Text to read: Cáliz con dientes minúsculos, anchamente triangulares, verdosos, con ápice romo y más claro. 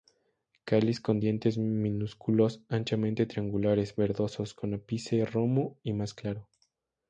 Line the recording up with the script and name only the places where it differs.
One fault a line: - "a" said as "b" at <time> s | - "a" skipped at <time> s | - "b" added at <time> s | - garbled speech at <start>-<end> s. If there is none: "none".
none